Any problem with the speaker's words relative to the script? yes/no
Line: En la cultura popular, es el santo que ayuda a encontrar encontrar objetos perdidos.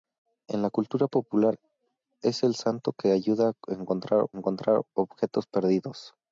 no